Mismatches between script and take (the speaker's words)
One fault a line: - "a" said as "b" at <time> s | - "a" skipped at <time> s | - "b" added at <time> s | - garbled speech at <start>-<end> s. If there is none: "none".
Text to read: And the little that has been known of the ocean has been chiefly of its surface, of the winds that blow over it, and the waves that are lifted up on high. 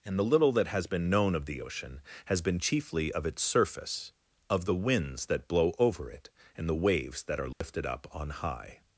none